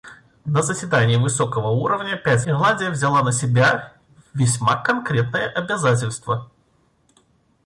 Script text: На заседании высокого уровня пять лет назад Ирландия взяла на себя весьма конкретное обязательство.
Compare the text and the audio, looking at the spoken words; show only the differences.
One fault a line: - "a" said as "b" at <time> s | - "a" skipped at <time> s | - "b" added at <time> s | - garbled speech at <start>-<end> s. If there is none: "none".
- "лет назад" skipped at 2.5 s